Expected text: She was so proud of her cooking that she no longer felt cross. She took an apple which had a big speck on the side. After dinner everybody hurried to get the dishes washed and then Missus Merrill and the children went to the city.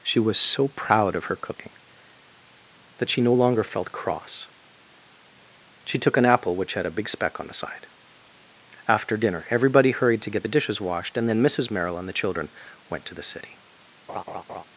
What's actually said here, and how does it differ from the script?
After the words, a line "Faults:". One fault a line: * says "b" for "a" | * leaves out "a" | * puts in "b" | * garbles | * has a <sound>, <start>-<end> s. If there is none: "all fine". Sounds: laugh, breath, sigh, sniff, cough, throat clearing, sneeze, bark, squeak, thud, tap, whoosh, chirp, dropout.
She was so proud of her cooking that she no longer felt cross. She took an apple which had a big speck on the side. After dinner everybody hurried to get the dishes washed and then Missus Merrill and the children went to the city.
Faults:
* has a laugh, 14.1-14.6 s